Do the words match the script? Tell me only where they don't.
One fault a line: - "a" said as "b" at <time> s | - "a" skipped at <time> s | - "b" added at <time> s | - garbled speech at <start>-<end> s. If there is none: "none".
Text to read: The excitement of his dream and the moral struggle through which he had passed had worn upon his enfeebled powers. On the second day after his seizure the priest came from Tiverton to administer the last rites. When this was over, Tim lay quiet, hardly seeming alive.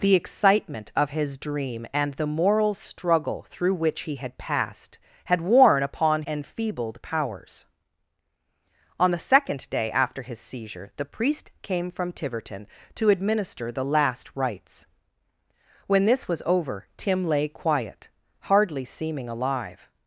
- "his" skipped at 6.2 s